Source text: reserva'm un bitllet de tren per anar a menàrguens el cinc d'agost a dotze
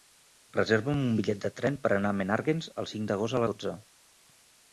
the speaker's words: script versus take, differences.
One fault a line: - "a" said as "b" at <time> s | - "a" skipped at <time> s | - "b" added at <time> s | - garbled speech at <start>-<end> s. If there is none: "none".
none